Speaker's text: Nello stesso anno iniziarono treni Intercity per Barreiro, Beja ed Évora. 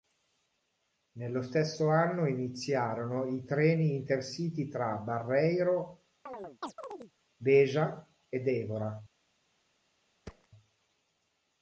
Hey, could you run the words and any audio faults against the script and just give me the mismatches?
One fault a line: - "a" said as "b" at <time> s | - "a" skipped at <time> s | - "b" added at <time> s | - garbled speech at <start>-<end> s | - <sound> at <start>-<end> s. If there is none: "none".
- "i" added at 3.2 s
- "per" said as "tra" at 4.7 s
- chirp at 6.3-7.1 s
- thud at 10.3-10.5 s